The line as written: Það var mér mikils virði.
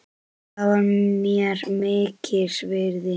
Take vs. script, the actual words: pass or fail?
pass